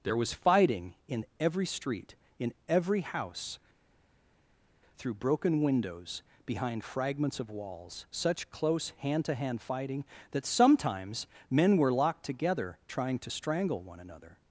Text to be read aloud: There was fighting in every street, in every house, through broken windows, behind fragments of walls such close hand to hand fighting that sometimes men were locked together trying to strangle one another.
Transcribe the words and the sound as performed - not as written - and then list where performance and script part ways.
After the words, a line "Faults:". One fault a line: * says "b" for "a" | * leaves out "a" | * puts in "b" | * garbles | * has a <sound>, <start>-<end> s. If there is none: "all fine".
There was fighting in every street, in every house, through broken windows, behind fragments of walls such close hand to hand fighting that sometimes men were locked together trying to strangle one another.
Faults:
all fine